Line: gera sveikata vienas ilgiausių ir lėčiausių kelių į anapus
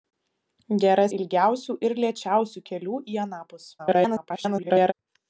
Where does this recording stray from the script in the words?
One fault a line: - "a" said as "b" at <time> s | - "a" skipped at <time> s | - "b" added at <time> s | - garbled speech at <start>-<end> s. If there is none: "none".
- "sveikata vienas" skipped at 1.0 s
- garbled speech at 3.8-4.9 s